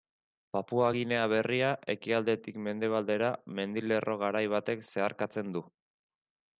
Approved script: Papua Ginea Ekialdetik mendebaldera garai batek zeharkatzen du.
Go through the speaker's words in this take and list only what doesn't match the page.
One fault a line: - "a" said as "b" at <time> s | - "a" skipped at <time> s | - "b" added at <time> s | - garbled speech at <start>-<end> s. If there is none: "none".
- "Berria" added at 1.3 s
- "mendilerro" added at 3.6 s